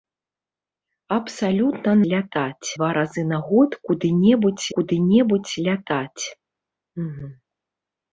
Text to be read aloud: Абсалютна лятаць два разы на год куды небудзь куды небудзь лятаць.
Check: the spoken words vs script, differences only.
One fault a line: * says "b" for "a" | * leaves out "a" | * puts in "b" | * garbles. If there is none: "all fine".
all fine